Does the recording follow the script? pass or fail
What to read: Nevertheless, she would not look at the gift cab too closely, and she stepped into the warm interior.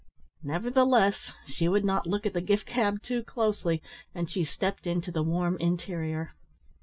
pass